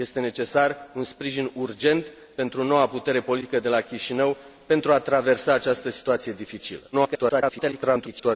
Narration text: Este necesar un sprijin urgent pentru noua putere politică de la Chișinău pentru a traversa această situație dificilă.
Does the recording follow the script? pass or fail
fail